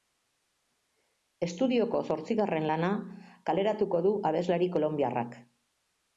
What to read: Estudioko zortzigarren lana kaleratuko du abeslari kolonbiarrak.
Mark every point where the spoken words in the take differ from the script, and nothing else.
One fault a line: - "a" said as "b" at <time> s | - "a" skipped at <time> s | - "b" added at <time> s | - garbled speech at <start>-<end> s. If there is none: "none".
none